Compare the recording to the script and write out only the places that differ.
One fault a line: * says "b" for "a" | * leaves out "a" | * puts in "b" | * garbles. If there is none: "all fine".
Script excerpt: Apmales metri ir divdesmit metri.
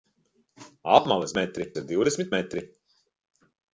all fine